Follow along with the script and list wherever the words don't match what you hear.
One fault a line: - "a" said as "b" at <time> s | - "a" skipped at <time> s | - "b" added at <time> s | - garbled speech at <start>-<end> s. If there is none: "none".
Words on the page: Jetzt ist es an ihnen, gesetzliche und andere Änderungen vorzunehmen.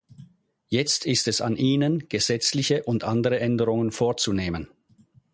none